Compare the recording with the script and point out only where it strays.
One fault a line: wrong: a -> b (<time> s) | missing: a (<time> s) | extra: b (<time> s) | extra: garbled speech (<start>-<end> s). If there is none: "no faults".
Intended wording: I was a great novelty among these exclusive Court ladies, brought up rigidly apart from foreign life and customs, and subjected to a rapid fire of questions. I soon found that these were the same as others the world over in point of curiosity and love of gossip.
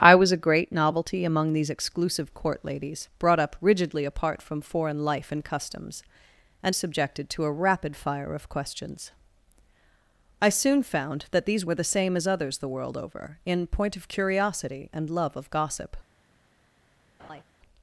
no faults